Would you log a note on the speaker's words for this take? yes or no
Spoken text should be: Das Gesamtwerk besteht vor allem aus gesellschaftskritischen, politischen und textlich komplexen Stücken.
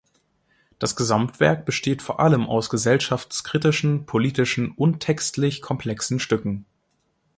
no